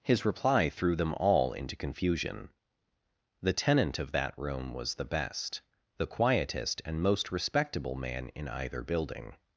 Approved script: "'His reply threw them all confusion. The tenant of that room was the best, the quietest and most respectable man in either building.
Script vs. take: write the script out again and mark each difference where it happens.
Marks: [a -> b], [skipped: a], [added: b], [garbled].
"'His reply threw them all [added: into] confusion. The tenant of that room was the best, the quietest and most respectable man in either building.